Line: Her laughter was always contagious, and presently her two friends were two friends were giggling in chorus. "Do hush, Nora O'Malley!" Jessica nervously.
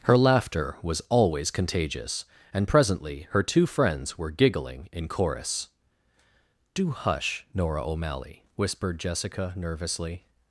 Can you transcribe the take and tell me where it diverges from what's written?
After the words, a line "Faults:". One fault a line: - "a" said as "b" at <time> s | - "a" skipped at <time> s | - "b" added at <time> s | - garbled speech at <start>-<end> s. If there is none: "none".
Her laughter was always contagious, and presently her two friends were giggling in chorus. "Do hush, Nora O'Malley!" whispered Jessica nervously.
Faults:
- "two friends were" skipped at 4.3 s
- "whispered" added at 8.6 s